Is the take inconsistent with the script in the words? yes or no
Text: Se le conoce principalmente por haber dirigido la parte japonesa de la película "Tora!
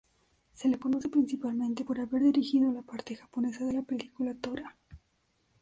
no